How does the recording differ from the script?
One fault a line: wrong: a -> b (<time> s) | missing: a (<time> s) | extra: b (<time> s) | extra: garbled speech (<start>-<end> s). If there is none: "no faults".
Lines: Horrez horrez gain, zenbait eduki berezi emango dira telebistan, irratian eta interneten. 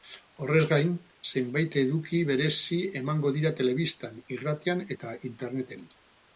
missing: horrez (0.6 s)